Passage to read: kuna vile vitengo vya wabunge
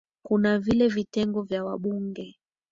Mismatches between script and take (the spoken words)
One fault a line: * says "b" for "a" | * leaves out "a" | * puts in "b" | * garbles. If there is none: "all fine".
all fine